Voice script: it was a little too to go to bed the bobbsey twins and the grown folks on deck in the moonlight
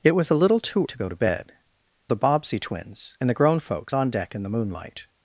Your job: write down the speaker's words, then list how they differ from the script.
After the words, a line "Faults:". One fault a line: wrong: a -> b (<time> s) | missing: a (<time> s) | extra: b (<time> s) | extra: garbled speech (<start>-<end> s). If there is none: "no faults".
it was a little too to go to bed the bobbsey twins and the grown folks on deck in the moonlight
Faults:
no faults